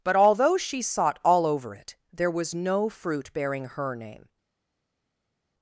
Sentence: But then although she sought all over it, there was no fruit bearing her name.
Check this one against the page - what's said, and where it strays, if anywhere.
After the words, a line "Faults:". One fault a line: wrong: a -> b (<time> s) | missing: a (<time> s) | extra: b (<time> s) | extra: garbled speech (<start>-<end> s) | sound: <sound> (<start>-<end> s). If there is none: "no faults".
But although she sought all over it, there was no fruit bearing her name.
Faults:
missing: then (0.1 s)